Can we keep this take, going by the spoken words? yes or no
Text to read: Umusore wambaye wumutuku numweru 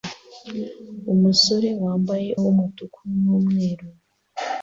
yes